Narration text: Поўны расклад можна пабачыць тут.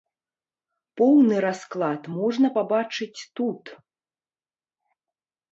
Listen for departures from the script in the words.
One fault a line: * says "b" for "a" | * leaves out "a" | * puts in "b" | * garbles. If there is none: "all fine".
all fine